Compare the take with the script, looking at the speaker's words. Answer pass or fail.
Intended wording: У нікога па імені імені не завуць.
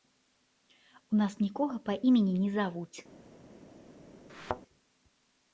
fail